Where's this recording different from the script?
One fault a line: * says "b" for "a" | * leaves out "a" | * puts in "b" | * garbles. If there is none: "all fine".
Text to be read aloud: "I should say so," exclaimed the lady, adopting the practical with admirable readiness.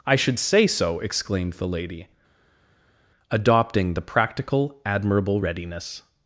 * leaves out "with"